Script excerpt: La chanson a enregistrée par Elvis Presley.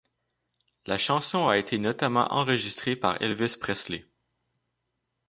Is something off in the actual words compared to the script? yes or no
yes